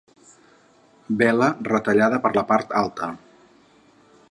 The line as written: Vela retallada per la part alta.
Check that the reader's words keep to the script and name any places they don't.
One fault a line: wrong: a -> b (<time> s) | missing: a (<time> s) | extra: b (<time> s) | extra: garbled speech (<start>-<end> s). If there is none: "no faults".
no faults